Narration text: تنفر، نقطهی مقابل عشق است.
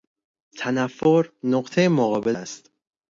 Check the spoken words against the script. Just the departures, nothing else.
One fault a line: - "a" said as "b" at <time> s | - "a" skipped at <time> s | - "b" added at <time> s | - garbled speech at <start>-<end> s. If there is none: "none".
- "عشق" skipped at 2.4 s